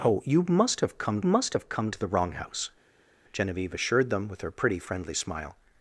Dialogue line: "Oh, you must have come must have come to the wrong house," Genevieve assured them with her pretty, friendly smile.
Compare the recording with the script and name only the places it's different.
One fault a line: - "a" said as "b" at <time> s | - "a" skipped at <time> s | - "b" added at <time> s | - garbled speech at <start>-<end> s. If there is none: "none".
none